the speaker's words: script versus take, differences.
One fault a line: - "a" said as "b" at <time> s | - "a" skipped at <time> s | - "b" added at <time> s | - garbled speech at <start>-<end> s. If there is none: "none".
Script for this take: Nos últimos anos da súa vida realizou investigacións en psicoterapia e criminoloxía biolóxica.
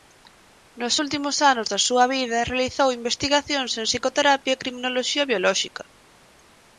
none